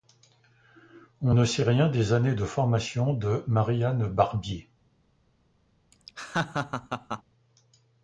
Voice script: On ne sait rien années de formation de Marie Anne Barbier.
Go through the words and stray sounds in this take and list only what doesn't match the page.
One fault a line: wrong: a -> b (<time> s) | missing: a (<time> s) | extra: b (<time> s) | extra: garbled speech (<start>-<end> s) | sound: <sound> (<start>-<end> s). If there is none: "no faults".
extra: des (1.9 s)
sound: laugh (5.9-7.2 s)